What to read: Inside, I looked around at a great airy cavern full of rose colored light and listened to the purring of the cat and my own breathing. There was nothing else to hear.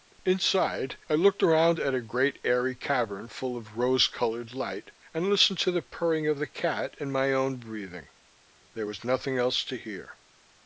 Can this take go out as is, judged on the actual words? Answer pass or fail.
pass